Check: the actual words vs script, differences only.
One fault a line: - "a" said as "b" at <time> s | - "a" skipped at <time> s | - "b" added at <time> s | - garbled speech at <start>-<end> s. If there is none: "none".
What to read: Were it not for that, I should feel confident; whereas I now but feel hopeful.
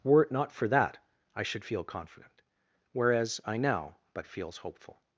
- "feel" said as "feels" at 4.3 s